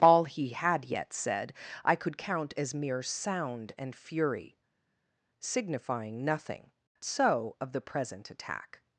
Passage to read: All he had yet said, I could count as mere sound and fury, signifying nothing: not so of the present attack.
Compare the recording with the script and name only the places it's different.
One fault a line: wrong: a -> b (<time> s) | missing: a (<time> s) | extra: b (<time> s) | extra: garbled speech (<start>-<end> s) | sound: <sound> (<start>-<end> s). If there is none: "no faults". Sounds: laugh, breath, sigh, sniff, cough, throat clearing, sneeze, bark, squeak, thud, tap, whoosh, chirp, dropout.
missing: not (6.7 s)